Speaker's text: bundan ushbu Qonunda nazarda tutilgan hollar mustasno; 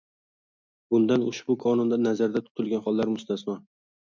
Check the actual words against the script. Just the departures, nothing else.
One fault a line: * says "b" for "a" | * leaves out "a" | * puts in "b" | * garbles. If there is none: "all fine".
all fine